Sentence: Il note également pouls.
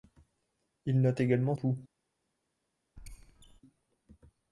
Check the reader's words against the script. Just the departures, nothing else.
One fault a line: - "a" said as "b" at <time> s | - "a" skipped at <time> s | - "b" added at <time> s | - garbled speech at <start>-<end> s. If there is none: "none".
none